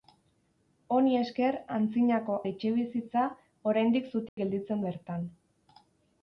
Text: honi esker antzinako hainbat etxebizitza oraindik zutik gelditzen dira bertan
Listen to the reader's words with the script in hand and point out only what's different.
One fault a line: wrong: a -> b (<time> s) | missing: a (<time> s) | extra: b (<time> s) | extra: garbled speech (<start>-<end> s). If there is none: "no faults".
missing: hainbat (2.4 s)
missing: dira (4.8 s)